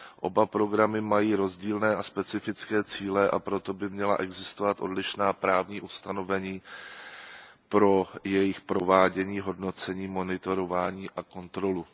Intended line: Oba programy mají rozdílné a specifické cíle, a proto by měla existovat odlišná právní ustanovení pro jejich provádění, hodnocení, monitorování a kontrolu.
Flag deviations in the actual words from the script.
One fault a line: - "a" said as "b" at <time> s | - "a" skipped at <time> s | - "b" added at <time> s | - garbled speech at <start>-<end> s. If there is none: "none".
none